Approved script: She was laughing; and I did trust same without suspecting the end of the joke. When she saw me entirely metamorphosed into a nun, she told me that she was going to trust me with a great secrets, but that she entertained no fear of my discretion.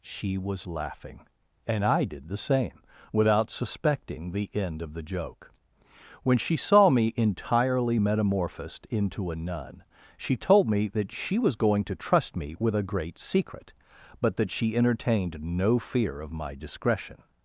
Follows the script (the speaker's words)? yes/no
no